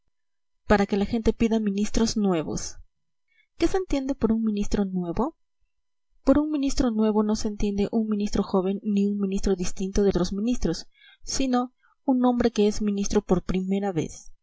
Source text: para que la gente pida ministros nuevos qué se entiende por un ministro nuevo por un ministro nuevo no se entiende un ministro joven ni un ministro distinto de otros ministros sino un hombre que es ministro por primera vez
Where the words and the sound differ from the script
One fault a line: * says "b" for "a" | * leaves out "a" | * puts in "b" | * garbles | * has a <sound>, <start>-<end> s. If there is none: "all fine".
all fine